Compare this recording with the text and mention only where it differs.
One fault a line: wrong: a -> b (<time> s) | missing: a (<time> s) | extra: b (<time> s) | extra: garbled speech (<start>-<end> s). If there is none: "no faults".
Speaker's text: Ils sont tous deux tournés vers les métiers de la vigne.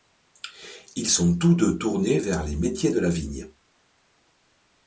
no faults